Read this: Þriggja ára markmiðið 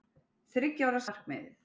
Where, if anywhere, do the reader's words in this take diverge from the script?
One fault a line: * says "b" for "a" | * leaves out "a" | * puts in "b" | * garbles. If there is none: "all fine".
all fine